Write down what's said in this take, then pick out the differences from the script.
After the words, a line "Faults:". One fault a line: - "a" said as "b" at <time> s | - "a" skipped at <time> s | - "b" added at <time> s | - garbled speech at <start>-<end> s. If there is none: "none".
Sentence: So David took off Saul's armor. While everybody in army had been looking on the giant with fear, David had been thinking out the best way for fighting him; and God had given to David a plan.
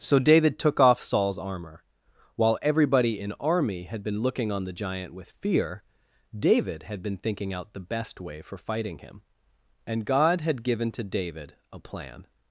So David took off Saul's armor. While everybody in army had been looking on the giant with fear, David had been thinking out the best way for fighting him; and God had given to David a plan.
Faults:
none